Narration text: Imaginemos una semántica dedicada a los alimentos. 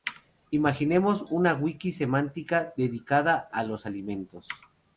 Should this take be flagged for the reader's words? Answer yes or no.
yes